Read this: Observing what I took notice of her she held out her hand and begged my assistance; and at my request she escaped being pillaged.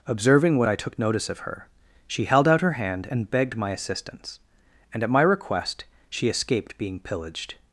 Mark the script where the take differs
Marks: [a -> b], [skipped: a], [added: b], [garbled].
Observing what I took notice of her she held out her hand and begged my assistance; and at my request she escaped being pillaged.